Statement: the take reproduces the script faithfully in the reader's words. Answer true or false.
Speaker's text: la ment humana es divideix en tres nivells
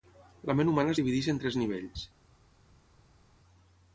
true